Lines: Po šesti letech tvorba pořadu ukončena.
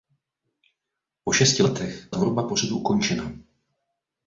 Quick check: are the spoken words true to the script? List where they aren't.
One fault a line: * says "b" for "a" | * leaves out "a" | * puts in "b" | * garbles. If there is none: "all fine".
all fine